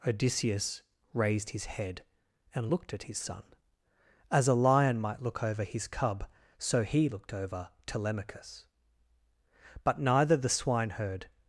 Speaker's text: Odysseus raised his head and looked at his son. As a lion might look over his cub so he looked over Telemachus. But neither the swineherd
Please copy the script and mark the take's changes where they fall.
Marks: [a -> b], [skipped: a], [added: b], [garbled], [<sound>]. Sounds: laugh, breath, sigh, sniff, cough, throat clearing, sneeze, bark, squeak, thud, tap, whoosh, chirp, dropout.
Odysseus raised his head and looked at his son. As a lion might look over his cub so he looked over Telemachus. But neither the swineherd